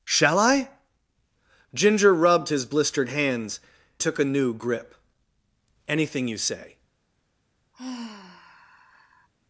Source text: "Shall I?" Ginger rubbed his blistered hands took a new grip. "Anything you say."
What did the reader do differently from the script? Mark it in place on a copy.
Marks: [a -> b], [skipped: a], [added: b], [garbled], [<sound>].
"Shall I?" Ginger rubbed his blistered hands took a new grip. "Anything you say." [sigh]